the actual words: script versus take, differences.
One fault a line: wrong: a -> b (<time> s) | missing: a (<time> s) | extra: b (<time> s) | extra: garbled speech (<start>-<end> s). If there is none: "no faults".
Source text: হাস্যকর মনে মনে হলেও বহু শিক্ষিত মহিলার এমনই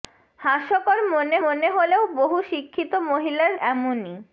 no faults